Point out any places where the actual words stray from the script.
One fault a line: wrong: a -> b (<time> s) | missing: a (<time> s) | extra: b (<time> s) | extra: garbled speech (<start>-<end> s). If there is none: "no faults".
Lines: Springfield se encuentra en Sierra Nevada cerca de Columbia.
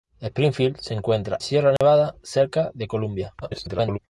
missing: en (1.4 s)
extra: garbled speech (3.4-4.0 s)